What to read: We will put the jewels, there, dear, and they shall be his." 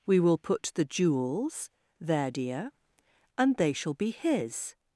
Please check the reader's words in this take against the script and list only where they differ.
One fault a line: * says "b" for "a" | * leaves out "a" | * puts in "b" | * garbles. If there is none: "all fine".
all fine